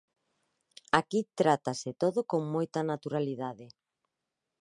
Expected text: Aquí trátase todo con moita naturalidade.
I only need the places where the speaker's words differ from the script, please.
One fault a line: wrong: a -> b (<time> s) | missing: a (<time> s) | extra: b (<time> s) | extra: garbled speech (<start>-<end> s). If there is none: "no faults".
no faults